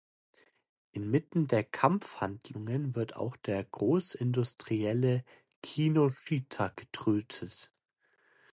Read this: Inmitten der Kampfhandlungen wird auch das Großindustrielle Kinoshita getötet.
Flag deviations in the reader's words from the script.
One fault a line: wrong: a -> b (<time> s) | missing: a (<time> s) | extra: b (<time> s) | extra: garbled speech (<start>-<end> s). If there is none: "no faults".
wrong: das -> der (3.4 s)